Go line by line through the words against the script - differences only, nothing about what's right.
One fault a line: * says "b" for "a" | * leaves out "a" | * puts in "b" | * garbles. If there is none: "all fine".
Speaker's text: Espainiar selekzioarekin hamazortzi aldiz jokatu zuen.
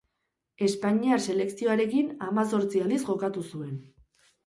all fine